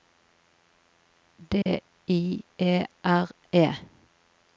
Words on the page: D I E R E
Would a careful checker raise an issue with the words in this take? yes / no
no